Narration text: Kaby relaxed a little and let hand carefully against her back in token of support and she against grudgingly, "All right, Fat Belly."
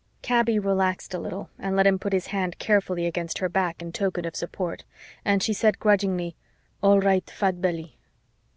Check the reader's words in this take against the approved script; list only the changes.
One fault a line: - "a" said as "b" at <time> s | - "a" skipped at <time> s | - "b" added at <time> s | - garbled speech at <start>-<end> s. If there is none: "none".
- "him put his" added at 1.9 s
- "against" said as "said" at 5.5 s